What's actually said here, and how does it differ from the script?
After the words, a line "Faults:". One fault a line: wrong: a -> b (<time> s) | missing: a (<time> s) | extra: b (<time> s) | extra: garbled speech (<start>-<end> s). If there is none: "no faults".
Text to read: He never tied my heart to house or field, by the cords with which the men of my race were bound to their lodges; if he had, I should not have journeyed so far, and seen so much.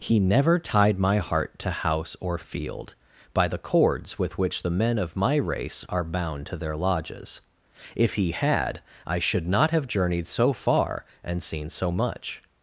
He never tied my heart to house or field, by the cords with which the men of my race are bound to their lodges; if he had, I should not have journeyed so far, and seen so much.
Faults:
wrong: were -> are (5.9 s)